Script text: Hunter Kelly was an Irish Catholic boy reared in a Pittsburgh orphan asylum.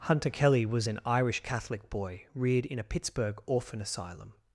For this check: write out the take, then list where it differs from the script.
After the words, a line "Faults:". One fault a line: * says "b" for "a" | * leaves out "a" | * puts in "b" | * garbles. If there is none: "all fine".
Hunter Kelly was an Irish Catholic boy reared in a Pittsburgh orphan asylum.
Faults:
all fine